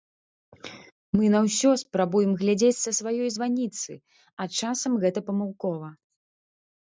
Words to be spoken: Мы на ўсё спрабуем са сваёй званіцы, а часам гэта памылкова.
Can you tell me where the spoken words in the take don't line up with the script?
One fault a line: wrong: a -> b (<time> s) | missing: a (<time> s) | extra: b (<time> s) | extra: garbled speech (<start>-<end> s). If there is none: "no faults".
extra: глядзець (2.4 s)